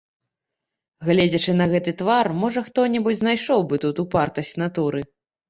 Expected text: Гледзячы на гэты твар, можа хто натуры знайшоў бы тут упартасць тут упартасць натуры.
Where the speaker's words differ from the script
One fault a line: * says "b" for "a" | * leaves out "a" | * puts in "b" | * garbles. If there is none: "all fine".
* says "небудзь" for "натуры"
* leaves out "тут упартасць"